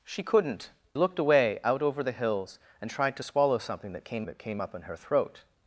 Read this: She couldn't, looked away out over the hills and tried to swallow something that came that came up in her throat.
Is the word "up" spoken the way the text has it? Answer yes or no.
yes